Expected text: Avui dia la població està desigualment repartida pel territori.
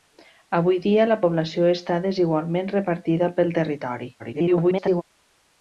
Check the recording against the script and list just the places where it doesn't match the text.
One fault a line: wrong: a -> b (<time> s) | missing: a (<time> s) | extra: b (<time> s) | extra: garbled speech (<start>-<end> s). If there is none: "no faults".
extra: garbled speech (4.2-5.0 s)